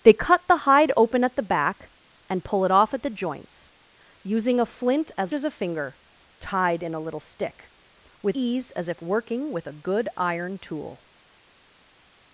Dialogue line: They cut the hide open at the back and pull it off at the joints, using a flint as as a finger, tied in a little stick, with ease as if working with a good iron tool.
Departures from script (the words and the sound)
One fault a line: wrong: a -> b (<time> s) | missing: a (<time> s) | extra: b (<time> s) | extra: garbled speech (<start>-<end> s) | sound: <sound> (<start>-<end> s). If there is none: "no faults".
no faults